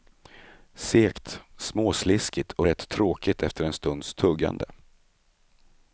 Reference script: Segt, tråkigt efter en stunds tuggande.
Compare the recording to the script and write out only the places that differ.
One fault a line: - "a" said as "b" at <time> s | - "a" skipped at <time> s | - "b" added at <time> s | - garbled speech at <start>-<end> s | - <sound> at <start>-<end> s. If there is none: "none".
- "småsliskigt och rätt" added at 1.6 s